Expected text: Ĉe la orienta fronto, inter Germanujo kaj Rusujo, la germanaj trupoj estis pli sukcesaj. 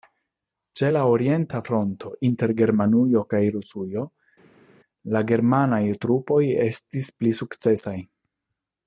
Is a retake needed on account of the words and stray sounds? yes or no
no